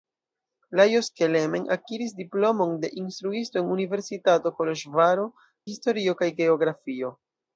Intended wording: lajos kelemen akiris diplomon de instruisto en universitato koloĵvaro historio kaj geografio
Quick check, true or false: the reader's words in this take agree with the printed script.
true